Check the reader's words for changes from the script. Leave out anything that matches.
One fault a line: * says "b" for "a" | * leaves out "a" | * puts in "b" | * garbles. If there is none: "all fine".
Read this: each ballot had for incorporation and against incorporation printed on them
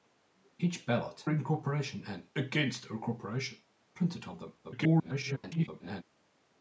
* leaves out "had for"
* garbles